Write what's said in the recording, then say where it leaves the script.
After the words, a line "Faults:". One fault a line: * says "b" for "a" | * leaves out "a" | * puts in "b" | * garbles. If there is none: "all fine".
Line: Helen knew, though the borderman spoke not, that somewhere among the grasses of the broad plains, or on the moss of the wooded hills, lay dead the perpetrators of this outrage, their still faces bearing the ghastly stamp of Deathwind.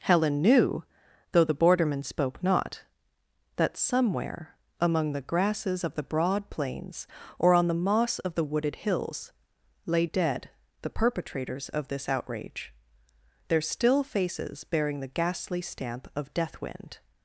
Helen knew, though the borderman spoke not, that somewhere among the grasses of the broad plains, or on the moss of the wooded hills, lay dead the perpetrators of this outrage, their still faces bearing the ghastly stamp of Deathwind.
Faults:
all fine